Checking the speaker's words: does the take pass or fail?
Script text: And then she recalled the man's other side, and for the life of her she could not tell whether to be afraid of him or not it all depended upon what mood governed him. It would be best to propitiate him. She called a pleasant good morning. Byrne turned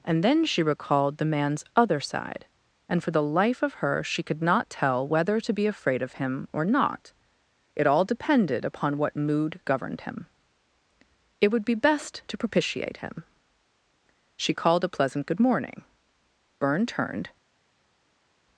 pass